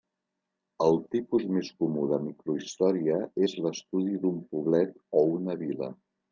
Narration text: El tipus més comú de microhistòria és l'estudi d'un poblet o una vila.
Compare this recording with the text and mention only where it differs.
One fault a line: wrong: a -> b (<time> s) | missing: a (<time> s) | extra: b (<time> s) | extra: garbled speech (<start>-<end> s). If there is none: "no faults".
no faults